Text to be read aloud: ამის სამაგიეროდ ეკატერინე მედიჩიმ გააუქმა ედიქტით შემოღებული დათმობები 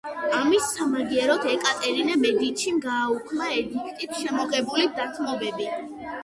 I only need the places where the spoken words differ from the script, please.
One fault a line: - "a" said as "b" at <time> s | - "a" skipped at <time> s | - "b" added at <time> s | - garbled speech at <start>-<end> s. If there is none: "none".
none